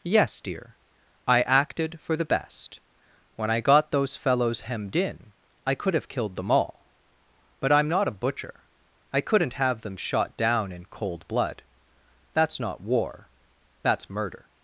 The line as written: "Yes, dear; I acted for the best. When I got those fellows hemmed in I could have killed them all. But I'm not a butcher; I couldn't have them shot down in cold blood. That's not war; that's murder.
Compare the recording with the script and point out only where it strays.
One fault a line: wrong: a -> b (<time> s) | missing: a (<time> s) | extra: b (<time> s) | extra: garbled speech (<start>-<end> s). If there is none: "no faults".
no faults